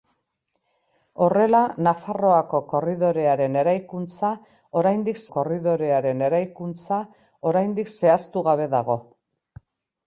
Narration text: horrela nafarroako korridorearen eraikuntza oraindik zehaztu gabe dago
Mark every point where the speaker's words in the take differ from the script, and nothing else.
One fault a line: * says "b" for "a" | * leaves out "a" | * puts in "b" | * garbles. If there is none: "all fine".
* puts in "korridorearen eraikuntza oraindik"